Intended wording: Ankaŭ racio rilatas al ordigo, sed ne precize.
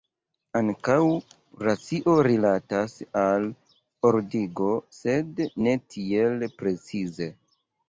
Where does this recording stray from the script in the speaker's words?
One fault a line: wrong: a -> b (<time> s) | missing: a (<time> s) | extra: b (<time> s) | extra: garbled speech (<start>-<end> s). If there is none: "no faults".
extra: tiel (6.0 s)